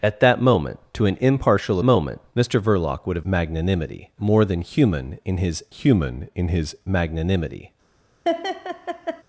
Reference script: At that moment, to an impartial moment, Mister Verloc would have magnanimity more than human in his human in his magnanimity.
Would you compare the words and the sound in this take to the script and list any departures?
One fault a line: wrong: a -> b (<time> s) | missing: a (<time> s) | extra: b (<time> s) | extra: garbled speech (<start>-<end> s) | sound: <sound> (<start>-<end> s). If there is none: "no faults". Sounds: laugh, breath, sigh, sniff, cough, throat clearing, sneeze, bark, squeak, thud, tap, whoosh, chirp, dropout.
sound: laugh (8.2-9.2 s)